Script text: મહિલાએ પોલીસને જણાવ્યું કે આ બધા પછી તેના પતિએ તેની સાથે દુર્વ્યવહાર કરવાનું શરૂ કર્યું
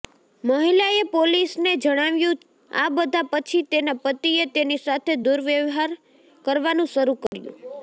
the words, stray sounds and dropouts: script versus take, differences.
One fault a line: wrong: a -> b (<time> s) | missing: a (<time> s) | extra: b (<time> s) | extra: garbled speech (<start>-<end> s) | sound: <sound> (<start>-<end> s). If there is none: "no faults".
missing: કે (2.4 s)
sound: dropout (7.3-7.3 s)